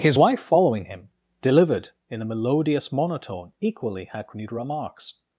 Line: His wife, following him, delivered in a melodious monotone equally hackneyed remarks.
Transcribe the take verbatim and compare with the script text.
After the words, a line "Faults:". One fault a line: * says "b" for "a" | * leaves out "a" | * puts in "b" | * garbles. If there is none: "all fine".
His wife, following him, delivered in a melodious monotone equally hackneyed remarks.
Faults:
all fine